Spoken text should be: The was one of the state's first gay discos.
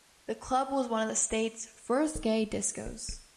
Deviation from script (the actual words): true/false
true